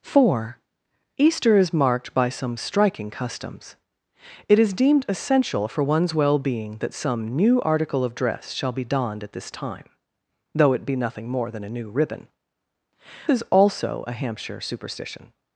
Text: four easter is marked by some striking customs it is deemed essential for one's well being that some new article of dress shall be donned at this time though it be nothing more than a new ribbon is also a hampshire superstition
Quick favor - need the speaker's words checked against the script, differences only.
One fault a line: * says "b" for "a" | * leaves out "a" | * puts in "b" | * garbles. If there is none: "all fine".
all fine